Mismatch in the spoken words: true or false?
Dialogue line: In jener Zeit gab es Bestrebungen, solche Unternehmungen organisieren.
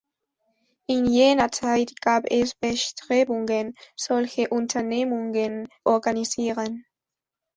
false